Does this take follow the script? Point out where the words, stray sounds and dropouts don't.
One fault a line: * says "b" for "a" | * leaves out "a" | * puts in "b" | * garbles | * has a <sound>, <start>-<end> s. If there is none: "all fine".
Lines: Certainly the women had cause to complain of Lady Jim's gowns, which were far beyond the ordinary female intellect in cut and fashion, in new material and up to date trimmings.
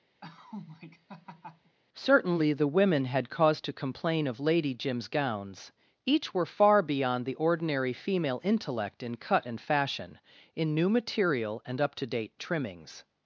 * has a laugh, 0.2-1.8 s
* says "each" for "which"